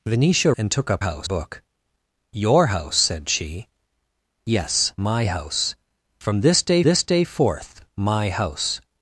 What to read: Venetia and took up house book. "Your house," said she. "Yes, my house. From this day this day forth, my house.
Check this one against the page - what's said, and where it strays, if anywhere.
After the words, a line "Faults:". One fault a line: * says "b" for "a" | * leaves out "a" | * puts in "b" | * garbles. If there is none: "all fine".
Venetia and took up house book. "Your house," said she. "Yes, my house. From this day this day forth, my house.
Faults:
all fine